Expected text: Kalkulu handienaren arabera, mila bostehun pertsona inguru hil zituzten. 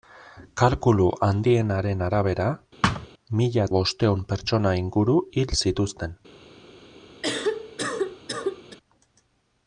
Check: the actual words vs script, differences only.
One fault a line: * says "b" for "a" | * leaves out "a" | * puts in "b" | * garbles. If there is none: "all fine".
all fine